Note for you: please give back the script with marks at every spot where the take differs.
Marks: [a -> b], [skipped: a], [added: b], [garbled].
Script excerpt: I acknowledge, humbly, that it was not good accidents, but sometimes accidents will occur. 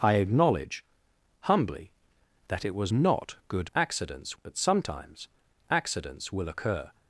I acknowledge, humbly, that it was not good accidents, but sometimes accidents will occur.